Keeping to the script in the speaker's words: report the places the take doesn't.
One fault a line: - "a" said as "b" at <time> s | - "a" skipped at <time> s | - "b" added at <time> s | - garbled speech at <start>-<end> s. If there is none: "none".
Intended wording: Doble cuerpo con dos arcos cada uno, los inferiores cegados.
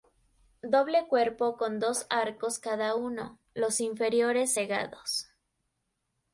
none